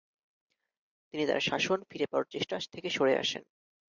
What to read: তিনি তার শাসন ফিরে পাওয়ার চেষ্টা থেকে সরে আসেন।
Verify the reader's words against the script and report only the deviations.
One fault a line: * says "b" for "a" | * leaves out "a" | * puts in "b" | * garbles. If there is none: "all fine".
all fine